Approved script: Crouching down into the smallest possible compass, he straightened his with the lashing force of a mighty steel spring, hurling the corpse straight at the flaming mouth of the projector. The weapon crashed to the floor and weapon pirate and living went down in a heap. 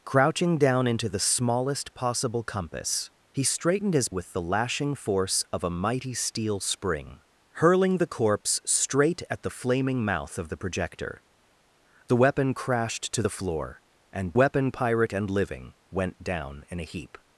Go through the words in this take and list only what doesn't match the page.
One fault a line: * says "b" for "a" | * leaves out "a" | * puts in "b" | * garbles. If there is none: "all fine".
all fine